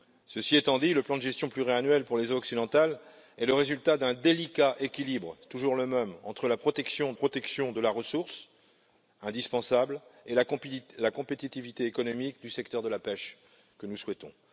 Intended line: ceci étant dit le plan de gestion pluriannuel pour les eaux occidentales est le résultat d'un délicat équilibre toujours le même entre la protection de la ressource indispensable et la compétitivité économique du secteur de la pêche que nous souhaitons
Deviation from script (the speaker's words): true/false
true